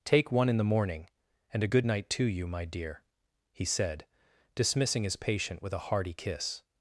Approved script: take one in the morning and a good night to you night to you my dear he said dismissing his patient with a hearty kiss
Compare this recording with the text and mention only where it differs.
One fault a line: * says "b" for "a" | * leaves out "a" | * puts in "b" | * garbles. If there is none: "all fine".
* leaves out "night to you"